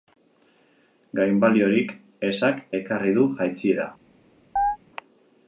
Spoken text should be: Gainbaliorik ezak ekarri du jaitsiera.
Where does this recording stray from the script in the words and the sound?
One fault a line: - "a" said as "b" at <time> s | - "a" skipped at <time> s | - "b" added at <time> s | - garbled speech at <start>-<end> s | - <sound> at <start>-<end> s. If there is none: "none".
- chirp at 4.6-4.8 s